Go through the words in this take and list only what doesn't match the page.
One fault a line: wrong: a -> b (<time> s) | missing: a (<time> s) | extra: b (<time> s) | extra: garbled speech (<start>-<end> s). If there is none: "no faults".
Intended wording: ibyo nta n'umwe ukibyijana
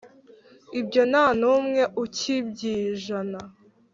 no faults